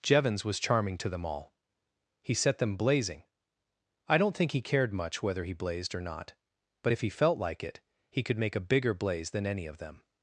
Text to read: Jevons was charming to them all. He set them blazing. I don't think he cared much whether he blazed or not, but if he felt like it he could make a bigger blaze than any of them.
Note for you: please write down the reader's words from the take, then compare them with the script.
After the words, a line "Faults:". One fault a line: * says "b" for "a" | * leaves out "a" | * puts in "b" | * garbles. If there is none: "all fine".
Jevons was charming to them all. He set them blazing. I don't think he cared much whether he blazed or not, but if he felt like it he could make a bigger blaze than any of them.
Faults:
all fine